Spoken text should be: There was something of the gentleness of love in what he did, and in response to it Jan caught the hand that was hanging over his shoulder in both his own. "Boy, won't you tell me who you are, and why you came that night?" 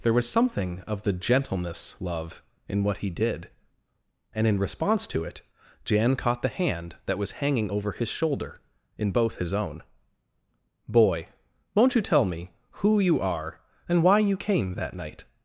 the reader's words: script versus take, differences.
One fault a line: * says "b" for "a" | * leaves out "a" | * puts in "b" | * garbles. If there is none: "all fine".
* leaves out "of"